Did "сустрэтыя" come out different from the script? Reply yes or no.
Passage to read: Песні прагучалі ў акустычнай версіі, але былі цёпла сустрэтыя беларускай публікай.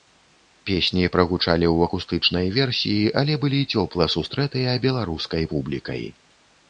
no